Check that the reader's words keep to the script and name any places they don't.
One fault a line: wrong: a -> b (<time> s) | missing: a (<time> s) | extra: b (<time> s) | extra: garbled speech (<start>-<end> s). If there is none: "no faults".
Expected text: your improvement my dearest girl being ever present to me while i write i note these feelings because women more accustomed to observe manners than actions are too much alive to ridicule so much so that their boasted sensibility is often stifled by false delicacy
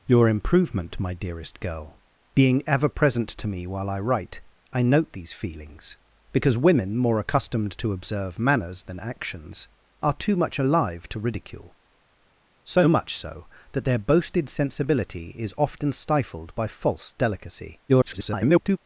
extra: garbled speech (17.9-18.8 s)